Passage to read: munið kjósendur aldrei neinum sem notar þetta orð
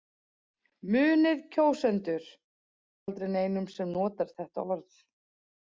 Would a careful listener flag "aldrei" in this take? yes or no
no